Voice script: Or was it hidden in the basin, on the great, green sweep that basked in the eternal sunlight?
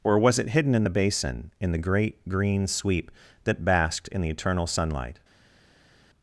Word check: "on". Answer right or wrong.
wrong